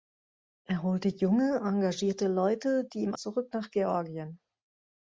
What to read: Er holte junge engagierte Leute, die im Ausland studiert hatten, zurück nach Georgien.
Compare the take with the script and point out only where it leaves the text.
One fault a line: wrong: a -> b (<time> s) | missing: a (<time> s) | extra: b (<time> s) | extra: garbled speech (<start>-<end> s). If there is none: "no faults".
missing: Ausland studiert hatten (3.1 s)